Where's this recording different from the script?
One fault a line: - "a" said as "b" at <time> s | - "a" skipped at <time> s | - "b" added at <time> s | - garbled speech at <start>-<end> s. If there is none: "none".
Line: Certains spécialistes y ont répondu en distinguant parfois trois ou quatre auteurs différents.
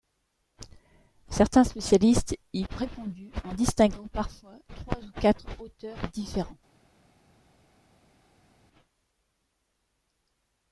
- "ont" skipped at 2.6 s